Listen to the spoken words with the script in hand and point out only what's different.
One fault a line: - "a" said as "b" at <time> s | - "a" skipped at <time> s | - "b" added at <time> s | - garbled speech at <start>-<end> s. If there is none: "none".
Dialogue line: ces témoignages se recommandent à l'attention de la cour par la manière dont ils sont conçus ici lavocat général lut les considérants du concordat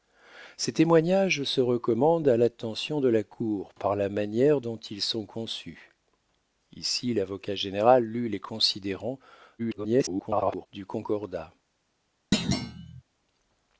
- garbled speech at 9.6-10.7 s